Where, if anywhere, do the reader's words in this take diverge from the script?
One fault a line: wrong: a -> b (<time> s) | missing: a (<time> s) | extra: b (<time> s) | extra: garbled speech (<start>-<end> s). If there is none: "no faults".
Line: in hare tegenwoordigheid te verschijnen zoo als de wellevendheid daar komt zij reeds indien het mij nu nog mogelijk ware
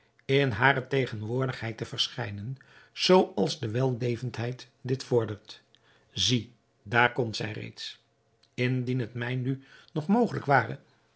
extra: dit vordert zie (4.8 s)